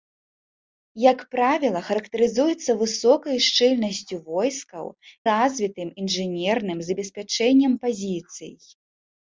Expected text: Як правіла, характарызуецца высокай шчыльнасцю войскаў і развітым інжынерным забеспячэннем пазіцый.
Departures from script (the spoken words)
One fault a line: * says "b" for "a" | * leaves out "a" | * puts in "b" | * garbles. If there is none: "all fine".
* leaves out "і"